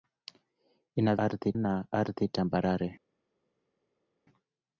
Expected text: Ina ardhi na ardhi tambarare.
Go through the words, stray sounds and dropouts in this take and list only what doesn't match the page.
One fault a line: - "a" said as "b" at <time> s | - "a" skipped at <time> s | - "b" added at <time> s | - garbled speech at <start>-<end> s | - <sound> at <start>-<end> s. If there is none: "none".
none